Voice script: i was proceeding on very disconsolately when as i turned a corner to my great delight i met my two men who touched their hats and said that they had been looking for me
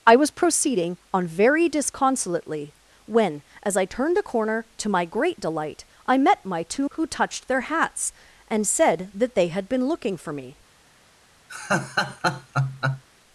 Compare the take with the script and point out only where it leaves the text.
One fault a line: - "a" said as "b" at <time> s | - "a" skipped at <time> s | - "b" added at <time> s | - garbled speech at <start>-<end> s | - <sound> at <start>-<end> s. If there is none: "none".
- "men" skipped at 6.9 s
- laugh at 11.5-13.0 s